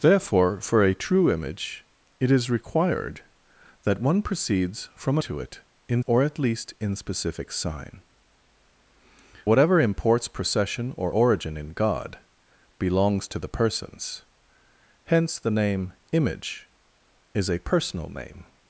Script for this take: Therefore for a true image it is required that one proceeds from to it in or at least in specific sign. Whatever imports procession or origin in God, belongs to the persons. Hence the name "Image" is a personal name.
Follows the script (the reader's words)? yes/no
yes